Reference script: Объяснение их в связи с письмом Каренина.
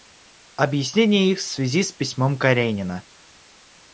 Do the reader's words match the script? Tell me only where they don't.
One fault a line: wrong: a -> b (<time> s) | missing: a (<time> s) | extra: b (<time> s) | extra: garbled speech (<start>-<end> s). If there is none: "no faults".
no faults